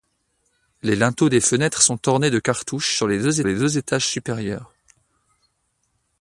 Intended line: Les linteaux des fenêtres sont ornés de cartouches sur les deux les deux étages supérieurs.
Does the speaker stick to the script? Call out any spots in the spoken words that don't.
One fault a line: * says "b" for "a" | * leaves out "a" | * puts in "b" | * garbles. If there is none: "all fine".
all fine